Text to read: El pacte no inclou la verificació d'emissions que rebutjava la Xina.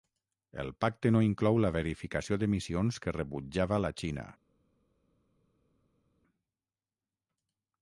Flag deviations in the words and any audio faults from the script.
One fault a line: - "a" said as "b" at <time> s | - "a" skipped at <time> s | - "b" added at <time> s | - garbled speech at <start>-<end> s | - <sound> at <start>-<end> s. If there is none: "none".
none